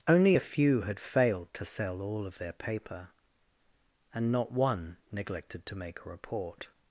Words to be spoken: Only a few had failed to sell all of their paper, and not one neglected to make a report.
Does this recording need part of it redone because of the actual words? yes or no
no